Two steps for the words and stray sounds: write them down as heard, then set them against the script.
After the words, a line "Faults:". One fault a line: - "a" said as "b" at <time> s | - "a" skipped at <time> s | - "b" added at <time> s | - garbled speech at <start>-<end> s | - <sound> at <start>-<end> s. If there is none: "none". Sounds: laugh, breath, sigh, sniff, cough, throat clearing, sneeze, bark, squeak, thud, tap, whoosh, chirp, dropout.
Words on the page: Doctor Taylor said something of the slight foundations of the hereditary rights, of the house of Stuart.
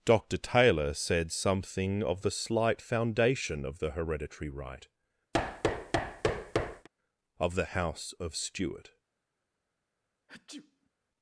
Doctor Taylor said something of the slight foundation of the hereditary right, of the house of Stuart.
Faults:
- "foundations" said as "foundation" at 2.8 s
- "rights" said as "right" at 4.5 s
- thud at 5.3-6.9 s
- sneeze at 10.3-10.9 s